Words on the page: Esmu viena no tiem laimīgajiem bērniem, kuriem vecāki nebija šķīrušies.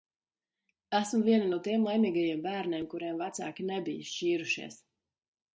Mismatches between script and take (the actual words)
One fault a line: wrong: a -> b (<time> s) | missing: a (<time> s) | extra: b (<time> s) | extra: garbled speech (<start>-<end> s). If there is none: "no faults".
no faults